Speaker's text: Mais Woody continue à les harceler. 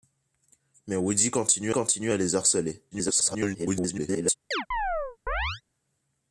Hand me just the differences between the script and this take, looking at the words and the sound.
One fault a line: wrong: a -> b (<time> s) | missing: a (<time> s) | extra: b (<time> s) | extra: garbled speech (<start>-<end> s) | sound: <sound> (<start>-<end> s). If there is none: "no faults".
extra: continue (1.7 s)
extra: garbled speech (2.9-4.3 s)
sound: chirp (4.5-5.6 s)